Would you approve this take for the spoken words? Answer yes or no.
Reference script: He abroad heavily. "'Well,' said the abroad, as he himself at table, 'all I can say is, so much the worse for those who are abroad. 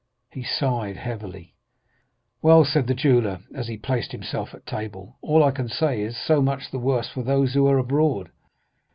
no